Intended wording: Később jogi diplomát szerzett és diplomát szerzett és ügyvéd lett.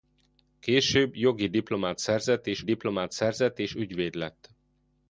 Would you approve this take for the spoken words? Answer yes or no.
yes